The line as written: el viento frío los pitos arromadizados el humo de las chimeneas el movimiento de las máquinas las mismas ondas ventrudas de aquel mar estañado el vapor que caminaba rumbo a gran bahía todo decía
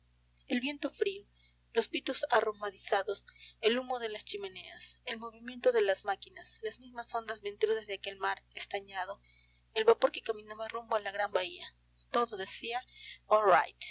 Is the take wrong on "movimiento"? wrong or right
right